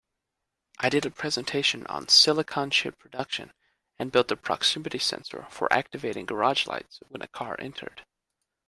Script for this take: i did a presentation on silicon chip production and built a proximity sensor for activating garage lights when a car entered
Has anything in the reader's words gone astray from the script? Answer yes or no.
no